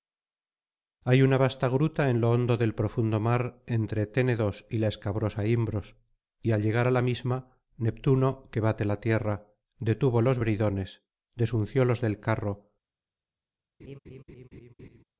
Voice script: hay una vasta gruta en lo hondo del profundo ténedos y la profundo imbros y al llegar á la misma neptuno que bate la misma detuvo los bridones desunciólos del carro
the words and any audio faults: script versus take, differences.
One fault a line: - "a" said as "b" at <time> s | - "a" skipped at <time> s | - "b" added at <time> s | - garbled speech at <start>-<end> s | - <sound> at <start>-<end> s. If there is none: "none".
- "mar entre" added at 3.2 s
- "profundo" said as "escabrosa" at 4.9 s
- "misma" said as "tierra" at 9.0 s
- laugh at 13.8-15.0 s